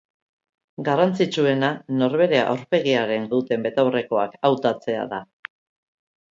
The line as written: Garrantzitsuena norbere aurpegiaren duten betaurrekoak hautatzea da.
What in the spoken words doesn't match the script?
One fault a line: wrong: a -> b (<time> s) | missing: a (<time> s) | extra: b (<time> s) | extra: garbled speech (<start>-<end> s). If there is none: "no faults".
no faults